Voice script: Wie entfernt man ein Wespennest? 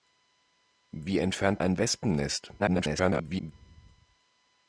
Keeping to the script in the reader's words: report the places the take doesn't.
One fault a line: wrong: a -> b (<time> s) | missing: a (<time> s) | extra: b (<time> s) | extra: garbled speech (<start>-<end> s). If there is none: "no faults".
missing: man (1.6 s)
extra: garbled speech (2.6-3.5 s)